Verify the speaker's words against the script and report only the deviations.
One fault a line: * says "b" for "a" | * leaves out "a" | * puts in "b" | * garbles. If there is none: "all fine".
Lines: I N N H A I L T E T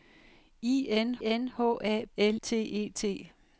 all fine